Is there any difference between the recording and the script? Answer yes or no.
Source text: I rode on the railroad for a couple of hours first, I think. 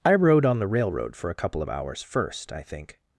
no